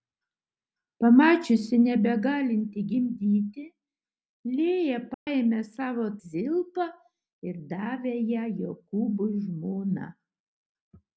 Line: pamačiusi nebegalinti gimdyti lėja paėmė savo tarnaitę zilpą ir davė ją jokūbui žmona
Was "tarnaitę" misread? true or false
true